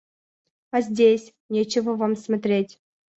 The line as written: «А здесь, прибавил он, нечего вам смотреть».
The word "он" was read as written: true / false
false